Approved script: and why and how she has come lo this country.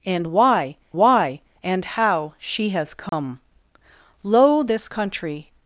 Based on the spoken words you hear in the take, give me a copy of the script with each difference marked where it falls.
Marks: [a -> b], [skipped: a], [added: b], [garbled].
and why [added: why] and how she has come lo this country.